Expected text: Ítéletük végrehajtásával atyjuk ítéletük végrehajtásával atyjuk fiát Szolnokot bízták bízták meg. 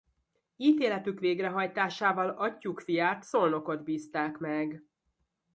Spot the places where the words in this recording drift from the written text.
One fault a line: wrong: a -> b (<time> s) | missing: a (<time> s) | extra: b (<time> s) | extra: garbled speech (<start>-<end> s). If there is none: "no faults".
missing: ítéletük végrehajtásával atyjuk (2.8 s)
missing: bízták (4.4 s)